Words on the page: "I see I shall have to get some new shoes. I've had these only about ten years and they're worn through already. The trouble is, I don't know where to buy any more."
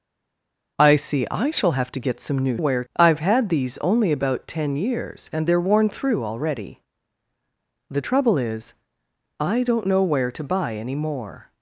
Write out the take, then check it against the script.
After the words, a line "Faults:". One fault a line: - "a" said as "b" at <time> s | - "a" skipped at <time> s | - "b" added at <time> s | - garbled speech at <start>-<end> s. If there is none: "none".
"I see I shall have to get some new where. I've had these only about ten years and they're worn through already. The trouble is, I don't know where to buy any more."
Faults:
- "shoes" said as "where" at 2.6 s